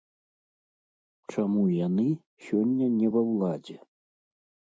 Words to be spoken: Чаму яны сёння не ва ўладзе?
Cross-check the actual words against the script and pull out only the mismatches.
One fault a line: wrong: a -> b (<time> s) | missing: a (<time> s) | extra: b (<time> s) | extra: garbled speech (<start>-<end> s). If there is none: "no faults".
no faults